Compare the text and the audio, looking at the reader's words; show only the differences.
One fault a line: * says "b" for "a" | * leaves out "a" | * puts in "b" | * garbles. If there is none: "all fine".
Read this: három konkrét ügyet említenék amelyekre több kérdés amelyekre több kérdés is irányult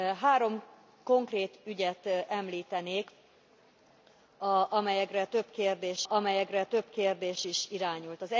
all fine